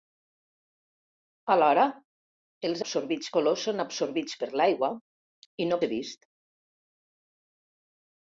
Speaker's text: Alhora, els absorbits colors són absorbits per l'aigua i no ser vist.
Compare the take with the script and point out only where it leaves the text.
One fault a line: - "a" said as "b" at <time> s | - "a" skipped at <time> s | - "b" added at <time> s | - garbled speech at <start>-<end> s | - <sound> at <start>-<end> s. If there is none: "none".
none